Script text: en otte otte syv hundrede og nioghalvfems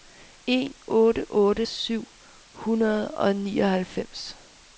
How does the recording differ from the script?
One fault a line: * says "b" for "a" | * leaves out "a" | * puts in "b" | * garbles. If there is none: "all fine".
all fine